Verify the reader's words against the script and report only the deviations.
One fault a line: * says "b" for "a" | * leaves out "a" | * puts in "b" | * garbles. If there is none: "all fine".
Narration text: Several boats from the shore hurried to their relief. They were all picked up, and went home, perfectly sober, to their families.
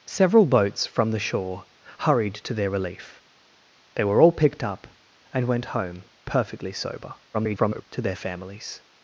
* garbles